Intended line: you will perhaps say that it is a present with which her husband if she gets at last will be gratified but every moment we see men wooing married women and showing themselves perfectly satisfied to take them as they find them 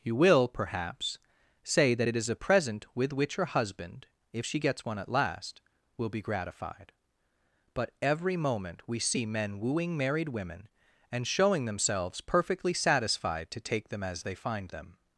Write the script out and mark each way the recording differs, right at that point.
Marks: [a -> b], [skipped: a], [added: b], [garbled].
you will perhaps say that it is a present with which her husband if she gets [added: one] at last will be gratified but every moment we see men wooing married women and showing themselves perfectly satisfied to take them as they find them